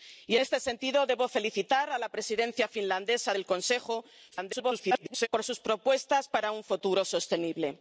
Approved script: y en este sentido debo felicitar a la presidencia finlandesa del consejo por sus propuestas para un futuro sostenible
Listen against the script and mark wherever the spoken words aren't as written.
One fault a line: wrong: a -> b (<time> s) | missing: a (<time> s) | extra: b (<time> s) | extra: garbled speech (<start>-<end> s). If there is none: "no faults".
missing: en (0.3 s)
extra: garbled speech (4.3-5.3 s)